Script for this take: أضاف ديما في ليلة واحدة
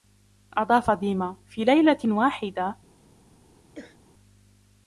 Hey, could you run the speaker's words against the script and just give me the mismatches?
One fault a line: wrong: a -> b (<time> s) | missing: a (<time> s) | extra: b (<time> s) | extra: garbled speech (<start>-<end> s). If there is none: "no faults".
no faults